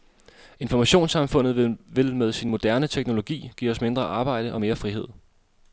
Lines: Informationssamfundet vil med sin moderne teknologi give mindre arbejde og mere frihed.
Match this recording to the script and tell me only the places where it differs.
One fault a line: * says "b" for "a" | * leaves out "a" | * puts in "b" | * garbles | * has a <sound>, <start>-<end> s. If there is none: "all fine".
* puts in "os"